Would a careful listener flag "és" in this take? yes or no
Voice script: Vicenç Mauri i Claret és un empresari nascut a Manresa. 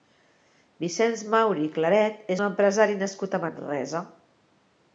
yes